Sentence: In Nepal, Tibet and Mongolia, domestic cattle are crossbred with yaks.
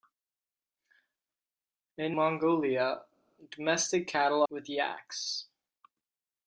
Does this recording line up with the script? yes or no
no